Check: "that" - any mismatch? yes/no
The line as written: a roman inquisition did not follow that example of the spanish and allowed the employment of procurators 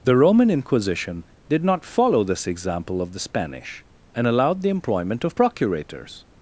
yes